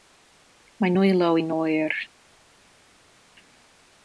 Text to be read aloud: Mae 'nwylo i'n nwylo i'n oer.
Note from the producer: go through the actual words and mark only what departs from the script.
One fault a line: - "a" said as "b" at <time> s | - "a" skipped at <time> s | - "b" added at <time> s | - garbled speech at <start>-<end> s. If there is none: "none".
- "nwylo i'n" skipped at 1.5 s